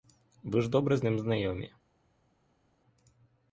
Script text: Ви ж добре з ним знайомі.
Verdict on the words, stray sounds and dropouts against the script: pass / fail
pass